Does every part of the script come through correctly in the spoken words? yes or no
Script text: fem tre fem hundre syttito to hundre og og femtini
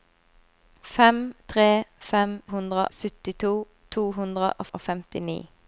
yes